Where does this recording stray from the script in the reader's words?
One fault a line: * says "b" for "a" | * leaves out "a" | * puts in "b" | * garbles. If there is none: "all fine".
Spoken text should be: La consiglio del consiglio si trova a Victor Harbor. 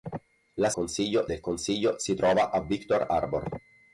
all fine